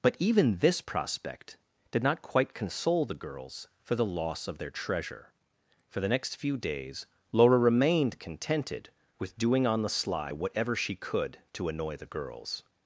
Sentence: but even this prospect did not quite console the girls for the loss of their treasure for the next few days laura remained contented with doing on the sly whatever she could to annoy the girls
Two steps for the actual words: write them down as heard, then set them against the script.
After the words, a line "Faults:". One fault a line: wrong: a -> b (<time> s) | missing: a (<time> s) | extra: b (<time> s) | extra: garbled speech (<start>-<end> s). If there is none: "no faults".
but even this prospect did not quite console the girls for the loss of their treasure for the next few days laura remained contented with doing on the sly whatever she could to annoy the girls
Faults:
no faults